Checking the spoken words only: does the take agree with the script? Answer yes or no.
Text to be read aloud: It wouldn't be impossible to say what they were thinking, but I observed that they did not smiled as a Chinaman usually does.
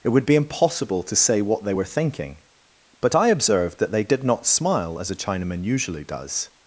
no